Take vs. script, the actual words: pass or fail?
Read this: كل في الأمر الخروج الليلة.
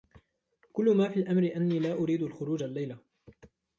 fail